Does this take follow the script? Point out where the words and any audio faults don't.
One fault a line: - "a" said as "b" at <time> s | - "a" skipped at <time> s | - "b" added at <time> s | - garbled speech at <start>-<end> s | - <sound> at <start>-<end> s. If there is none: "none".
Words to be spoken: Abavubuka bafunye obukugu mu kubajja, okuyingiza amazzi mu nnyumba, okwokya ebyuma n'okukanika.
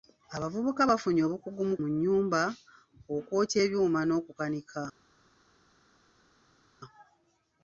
- "kubajja okuyingiza amazzi" skipped at 1.8 s